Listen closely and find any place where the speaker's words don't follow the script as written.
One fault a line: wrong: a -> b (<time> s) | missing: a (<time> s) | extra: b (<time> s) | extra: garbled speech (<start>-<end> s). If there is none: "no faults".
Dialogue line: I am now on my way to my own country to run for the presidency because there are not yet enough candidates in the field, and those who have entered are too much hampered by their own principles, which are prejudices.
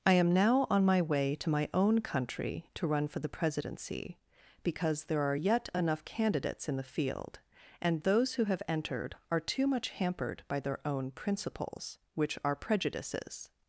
missing: not (5.3 s)